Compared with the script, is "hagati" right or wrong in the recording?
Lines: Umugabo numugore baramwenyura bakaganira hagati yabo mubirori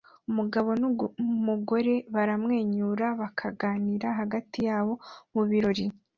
right